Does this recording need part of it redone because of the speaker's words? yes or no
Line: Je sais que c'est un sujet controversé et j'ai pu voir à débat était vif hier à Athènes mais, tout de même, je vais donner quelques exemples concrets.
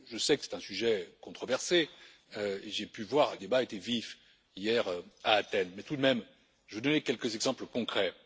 no